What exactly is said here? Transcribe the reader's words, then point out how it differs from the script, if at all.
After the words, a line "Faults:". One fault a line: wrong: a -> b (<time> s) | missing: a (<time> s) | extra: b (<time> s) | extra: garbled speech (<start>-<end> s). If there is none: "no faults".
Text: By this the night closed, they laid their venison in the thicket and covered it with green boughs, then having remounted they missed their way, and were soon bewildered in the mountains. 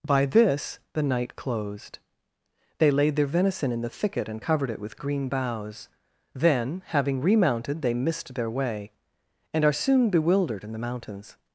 By this the night closed, they laid their venison in the thicket and covered it with green boughs, then having remounted they missed their way, and are soon bewildered in the mountains.
Faults:
wrong: were -> are (9.6 s)